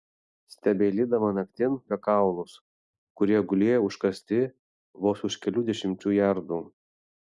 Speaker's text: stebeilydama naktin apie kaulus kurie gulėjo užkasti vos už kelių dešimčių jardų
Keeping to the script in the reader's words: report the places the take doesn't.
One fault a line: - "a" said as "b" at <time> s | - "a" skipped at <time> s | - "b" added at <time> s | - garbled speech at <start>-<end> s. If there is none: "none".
none